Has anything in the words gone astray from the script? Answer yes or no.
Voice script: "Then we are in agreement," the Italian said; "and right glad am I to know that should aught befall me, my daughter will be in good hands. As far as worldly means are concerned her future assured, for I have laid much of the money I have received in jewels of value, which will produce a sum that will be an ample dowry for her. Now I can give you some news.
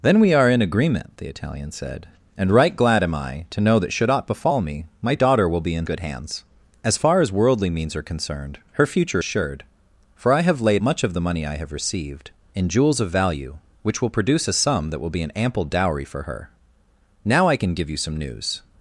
no